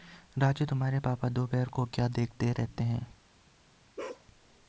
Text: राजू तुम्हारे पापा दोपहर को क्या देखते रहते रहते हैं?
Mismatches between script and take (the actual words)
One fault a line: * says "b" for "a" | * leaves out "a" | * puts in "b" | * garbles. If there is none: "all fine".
* leaves out "रहते"